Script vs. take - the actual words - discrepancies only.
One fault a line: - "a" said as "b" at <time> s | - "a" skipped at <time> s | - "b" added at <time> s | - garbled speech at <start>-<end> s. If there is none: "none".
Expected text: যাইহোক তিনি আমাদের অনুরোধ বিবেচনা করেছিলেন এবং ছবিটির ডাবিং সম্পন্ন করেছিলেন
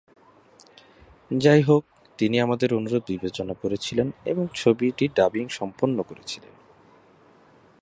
none